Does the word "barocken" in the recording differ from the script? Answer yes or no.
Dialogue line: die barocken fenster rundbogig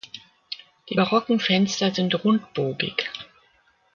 no